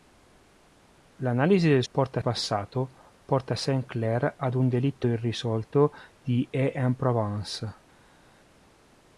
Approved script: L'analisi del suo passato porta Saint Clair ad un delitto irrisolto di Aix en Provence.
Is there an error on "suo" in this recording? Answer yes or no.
yes